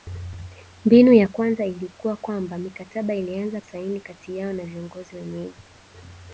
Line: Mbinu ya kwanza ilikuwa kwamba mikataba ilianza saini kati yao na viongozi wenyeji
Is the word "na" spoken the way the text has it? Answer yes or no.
yes